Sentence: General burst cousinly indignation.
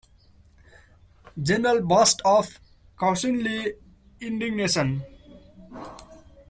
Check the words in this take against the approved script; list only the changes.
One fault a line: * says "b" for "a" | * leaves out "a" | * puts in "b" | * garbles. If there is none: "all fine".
* puts in "of"